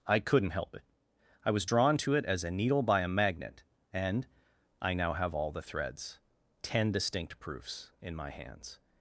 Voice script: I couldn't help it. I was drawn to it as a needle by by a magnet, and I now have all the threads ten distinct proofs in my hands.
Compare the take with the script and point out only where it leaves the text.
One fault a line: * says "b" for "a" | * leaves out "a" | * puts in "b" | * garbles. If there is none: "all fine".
* leaves out "by"